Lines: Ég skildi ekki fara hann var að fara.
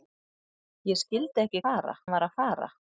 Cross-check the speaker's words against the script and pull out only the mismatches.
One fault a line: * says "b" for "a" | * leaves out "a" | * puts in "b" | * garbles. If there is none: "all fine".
all fine